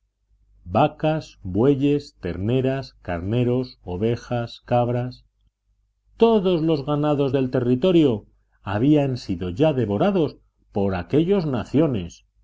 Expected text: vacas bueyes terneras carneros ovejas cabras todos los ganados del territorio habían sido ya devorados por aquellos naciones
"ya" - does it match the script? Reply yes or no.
yes